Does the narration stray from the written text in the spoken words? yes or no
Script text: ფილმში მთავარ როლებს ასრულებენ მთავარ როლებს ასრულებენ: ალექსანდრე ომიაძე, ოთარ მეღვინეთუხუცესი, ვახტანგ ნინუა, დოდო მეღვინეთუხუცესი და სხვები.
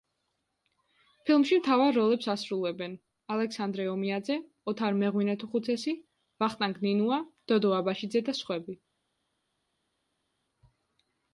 yes